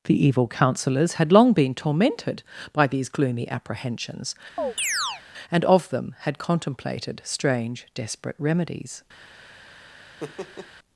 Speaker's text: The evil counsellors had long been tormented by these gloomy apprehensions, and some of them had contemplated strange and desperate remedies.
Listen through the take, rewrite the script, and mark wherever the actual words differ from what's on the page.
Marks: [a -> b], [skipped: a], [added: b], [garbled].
The evil counsellors had long been tormented by these gloomy apprehensions, and [skipped: some] of them had contemplated strange [skipped: and] desperate remedies.